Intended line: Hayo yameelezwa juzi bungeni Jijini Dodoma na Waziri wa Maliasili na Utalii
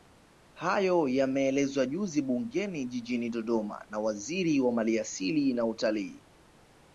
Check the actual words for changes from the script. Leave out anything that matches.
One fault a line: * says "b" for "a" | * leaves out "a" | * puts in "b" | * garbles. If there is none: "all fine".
all fine